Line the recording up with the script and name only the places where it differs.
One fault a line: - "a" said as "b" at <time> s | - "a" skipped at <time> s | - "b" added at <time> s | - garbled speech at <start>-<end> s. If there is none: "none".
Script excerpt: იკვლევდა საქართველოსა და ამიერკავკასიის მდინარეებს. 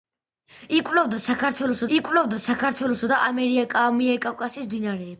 - "იკვლევდა საქართველოსა" added at 2.0 s